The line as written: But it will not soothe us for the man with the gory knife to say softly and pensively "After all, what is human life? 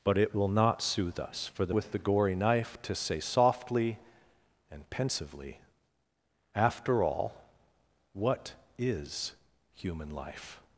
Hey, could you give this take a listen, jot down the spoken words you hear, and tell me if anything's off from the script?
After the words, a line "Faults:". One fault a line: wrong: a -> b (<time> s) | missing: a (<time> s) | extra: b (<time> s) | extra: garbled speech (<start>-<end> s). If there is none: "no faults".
But it will not soothe us for the with the gory knife to say softly and pensively "After all, what is human life?
Faults:
missing: man (1.7 s)